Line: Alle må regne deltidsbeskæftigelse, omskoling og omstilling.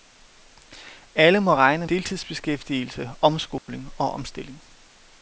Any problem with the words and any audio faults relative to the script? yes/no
yes